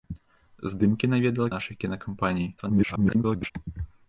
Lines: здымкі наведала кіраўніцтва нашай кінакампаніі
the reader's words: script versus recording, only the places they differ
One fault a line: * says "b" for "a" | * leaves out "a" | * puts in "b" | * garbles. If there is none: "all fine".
* leaves out "кіраўніцтва"
* garbles